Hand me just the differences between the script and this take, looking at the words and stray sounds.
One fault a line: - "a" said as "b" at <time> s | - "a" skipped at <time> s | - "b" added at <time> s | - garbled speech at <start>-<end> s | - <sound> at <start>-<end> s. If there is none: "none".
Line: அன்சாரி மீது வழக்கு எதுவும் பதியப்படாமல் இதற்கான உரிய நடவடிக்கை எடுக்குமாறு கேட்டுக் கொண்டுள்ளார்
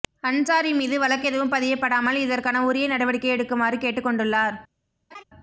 - laugh at 5.1-5.2 s